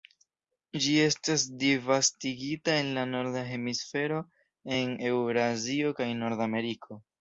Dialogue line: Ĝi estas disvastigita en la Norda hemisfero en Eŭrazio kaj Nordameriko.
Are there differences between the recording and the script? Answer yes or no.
no